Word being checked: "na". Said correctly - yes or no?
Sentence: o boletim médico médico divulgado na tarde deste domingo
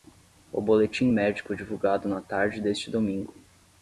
yes